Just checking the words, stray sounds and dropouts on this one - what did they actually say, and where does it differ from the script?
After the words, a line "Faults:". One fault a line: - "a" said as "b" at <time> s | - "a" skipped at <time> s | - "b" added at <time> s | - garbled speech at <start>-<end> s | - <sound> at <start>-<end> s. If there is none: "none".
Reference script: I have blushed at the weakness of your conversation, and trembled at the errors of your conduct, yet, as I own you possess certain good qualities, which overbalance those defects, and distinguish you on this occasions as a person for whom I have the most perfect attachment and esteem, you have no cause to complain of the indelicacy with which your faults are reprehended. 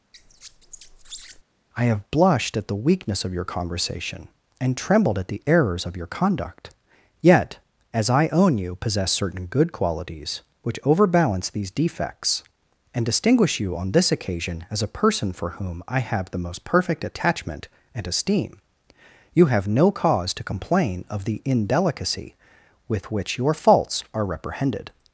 I have blushed at the weakness of your conversation, and trembled at the errors of your conduct, yet, as I own you possess certain good qualities, which overbalance these defects, and distinguish you on this occasion as a person for whom I have the most perfect attachment and esteem, you have no cause to complain of the indelicacy with which your faults are reprehended.
Faults:
- squeak at 0.1-1.4 s
- "those" said as "these" at 11.5 s
- "occasions" said as "occasion" at 14.1 s